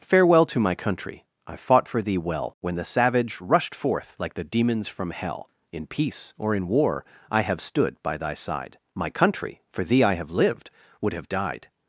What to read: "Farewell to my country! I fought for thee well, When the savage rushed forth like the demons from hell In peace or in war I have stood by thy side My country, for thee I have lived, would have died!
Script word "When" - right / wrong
right